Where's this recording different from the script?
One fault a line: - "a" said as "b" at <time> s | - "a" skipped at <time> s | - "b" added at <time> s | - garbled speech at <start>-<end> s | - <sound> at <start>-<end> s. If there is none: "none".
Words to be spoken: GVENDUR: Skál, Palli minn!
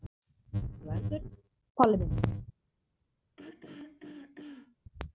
- "Skál" skipped at 1.2 s
- throat clearing at 3.4-4.8 s